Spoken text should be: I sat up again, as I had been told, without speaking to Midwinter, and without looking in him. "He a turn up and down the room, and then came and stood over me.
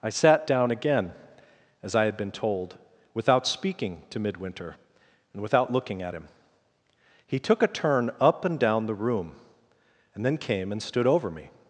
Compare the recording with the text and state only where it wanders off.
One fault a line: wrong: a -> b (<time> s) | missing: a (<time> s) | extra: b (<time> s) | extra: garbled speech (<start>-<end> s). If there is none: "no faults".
wrong: up -> down (0.5 s)
wrong: in -> at (6.0 s)
extra: took (7.4 s)